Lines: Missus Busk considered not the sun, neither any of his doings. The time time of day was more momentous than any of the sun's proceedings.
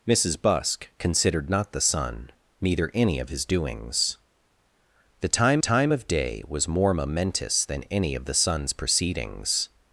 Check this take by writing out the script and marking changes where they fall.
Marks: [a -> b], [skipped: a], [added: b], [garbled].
Missus Busk considered not the sun, neither any of his doings. The time time of day was more momentous than any of the sun's proceedings.